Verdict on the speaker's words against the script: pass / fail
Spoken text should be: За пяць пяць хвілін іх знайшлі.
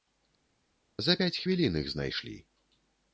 fail